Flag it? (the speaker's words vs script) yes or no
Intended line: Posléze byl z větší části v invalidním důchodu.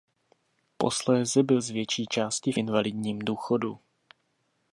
no